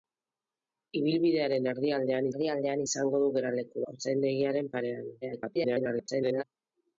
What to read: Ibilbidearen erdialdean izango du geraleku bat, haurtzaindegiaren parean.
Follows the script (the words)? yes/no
no